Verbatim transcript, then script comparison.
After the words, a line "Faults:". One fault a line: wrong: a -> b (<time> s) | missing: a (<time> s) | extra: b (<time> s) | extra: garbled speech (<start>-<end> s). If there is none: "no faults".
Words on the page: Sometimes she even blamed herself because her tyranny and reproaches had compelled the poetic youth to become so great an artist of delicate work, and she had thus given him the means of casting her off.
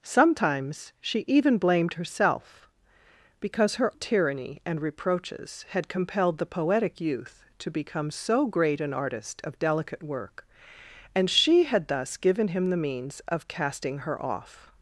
Sometimes she even blamed herself because her tyranny and reproaches had compelled the poetic youth to become so great an artist of delicate work, and she had thus given him the means of casting her off.
Faults:
no faults